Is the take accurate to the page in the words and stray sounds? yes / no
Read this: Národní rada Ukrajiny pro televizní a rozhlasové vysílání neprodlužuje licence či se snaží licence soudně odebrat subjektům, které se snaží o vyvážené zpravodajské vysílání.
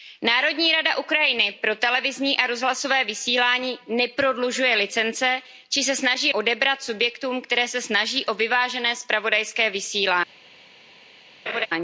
no